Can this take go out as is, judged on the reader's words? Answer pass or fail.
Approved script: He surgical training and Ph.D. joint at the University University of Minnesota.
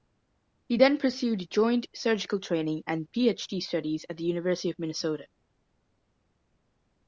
fail